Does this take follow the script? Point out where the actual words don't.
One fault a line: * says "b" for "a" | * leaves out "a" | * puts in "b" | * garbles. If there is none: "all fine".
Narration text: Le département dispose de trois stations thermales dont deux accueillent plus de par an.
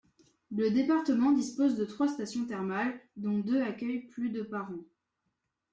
all fine